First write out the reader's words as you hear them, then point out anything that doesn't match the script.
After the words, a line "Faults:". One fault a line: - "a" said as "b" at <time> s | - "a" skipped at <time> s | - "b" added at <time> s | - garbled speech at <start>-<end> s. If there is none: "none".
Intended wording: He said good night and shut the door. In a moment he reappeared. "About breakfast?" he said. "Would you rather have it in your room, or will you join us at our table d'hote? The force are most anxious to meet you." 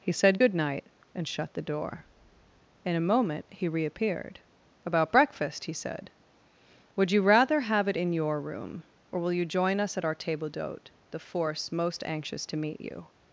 He said good night and shut the door. In a moment he reappeared. "About breakfast?" he said. "Would you rather have it in your room, or will you join us at our table d'hote? The force most anxious to meet you."
Faults:
- "are" skipped at 11.7 s